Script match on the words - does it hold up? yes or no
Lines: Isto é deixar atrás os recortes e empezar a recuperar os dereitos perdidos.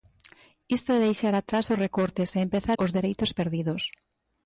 no